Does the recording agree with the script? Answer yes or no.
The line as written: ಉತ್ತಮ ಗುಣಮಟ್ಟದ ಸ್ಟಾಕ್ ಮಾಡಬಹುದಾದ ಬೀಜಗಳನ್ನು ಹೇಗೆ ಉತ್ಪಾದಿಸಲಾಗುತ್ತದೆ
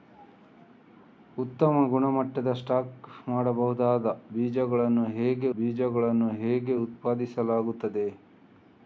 no